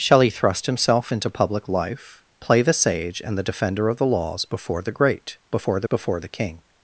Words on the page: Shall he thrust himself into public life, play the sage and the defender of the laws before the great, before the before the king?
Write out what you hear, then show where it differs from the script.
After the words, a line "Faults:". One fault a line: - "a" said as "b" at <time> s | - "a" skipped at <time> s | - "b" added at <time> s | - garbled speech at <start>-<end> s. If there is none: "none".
Shall he thrust himself into public life, play the sage and the defender of the laws before the great, before the before the king?
Faults:
none